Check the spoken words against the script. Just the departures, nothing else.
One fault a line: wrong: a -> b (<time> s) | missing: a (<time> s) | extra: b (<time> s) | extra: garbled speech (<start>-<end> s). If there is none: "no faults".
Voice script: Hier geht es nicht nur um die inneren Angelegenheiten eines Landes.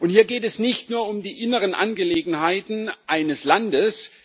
no faults